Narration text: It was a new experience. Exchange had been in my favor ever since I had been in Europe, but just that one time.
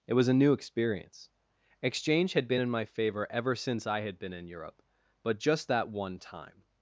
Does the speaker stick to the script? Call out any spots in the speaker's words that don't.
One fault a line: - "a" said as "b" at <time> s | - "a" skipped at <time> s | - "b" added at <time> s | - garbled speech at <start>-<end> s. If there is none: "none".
none